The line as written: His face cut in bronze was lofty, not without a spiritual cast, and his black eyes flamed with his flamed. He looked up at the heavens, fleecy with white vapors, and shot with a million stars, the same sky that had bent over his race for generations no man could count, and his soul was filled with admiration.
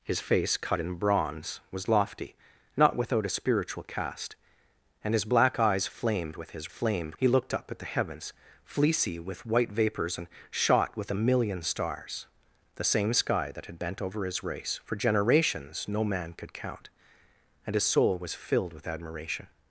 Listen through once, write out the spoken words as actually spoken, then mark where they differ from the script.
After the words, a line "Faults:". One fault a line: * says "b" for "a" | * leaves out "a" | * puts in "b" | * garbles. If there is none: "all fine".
His face cut in bronze was lofty, not without a spiritual cast, and his black eyes flamed with his flamed. He looked up at the heavens, fleecy with white vapors, and shot with a million stars, the same sky that had bent over his race for generations no man could count, and his soul was filled with admiration.
Faults:
all fine